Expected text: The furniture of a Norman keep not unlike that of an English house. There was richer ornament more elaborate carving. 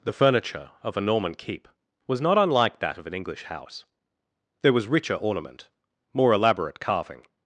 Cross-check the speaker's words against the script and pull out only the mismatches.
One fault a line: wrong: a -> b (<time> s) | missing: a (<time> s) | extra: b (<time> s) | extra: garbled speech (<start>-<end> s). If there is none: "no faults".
extra: was (2.1 s)